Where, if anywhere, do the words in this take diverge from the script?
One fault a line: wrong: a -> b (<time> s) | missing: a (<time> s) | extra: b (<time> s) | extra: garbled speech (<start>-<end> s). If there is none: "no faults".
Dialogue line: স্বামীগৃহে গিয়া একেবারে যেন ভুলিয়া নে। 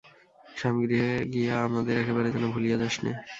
extra: আমাদের (1.7 s)
extra: যাস (2.8 s)